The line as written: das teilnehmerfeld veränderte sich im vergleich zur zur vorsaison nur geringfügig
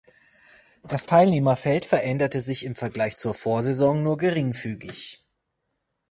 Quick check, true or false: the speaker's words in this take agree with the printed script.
false